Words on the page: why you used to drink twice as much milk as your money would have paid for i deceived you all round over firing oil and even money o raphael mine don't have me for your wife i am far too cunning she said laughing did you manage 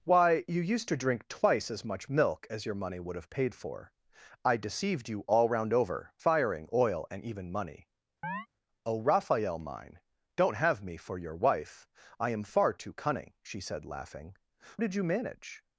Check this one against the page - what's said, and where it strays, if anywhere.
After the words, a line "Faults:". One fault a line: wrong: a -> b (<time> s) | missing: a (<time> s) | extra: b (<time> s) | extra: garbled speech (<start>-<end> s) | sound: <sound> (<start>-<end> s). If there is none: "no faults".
why you used to drink twice as much milk as your money would have paid for i deceived you all round over firing oil and even money o raphael mine don't have me for your wife i am far too cunning she said laughing did you manage
Faults:
sound: chirp (8.2-8.5 s)